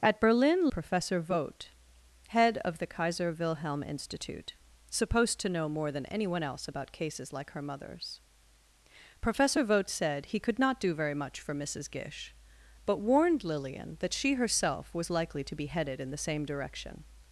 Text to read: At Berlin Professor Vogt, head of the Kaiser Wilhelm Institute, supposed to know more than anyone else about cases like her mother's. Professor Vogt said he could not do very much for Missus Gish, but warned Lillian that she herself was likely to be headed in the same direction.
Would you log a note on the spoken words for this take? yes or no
no